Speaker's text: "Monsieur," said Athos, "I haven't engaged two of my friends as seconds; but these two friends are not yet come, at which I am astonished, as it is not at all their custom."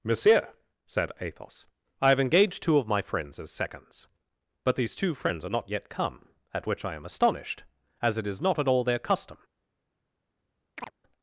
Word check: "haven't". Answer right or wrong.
wrong